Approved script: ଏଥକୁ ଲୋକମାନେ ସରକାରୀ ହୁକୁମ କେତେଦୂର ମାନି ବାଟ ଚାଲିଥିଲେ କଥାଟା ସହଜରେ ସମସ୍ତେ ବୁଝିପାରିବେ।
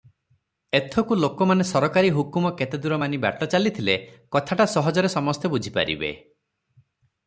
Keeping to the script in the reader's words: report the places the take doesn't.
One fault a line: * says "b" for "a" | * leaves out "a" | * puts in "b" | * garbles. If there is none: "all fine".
all fine